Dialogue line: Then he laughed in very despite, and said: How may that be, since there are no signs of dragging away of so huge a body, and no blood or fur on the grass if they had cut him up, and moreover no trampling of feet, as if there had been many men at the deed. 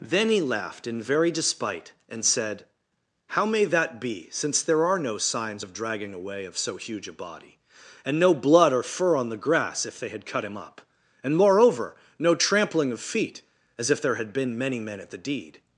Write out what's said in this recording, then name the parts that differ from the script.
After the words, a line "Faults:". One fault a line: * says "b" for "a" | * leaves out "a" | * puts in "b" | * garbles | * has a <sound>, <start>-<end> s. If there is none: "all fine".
Then he laughed in very despite, and said: How may that be, since there are no signs of dragging away of so huge a body, and no blood or fur on the grass if they had cut him up, and moreover no trampling of feet, as if there had been many men at the deed.
Faults:
all fine